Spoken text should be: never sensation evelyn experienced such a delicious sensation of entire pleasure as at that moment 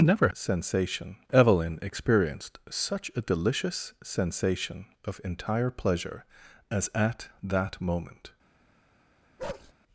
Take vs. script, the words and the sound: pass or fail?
fail